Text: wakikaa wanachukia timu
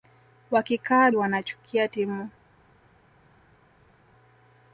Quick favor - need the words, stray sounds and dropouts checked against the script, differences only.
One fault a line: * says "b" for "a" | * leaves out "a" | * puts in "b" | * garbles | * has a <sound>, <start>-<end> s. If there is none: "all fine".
all fine